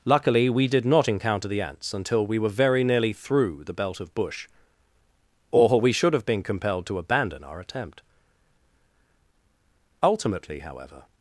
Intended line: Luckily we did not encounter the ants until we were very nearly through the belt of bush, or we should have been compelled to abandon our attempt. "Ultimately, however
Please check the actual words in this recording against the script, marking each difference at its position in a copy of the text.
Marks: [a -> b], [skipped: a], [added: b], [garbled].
Luckily we did not encounter the ants until we were very nearly through the belt of bush, or we should have been compelled to abandon our attempt. "Ultimately, however